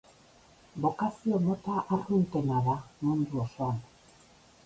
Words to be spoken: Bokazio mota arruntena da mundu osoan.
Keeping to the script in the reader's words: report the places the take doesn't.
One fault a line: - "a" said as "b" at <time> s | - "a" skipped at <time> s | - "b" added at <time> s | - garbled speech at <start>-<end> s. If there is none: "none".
none